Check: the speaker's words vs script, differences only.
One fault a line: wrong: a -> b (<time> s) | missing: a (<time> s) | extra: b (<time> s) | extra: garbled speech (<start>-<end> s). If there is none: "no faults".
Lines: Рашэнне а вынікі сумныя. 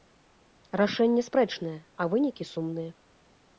extra: спрэчнае (1.3 s)